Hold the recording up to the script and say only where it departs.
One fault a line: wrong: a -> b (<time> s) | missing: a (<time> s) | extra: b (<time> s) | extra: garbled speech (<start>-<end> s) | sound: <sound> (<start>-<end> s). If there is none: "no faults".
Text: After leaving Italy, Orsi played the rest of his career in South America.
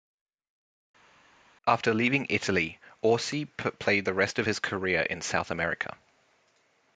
no faults